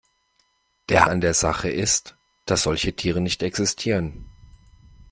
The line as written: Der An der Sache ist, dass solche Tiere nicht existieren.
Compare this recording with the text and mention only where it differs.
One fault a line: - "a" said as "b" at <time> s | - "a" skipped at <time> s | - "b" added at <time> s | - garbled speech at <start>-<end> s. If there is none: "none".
none